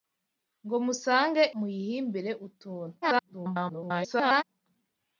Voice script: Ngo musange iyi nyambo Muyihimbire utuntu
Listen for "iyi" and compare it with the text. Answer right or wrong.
wrong